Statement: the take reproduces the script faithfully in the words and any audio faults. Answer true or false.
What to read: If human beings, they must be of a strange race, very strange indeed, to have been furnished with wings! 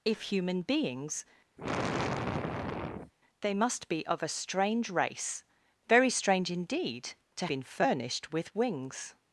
false